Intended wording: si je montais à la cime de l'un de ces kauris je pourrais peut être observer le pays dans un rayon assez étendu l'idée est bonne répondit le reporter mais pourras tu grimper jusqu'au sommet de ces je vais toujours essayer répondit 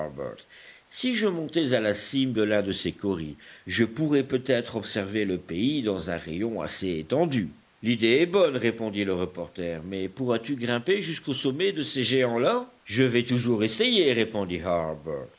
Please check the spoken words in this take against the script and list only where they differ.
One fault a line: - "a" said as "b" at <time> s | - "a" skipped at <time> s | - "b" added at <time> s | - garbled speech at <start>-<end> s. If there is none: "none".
- "géants là" added at 12.0 s